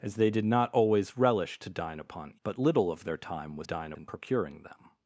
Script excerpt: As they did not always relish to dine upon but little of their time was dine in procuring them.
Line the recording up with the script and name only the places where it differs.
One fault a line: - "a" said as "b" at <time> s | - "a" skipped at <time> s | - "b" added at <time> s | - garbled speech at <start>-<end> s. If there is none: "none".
none